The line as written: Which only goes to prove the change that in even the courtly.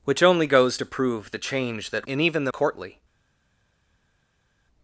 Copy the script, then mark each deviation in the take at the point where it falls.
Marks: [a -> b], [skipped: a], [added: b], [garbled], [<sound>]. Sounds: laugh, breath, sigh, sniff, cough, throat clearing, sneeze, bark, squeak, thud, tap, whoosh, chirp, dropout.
Which only goes to prove the change that in even the courtly.